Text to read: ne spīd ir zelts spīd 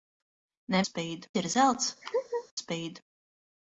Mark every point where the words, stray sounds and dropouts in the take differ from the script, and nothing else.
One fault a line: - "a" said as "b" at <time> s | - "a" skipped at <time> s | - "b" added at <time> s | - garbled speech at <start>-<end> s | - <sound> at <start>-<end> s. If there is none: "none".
- laugh at 2.0-2.5 s